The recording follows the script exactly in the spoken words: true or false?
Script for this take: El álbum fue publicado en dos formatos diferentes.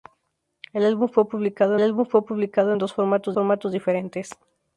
false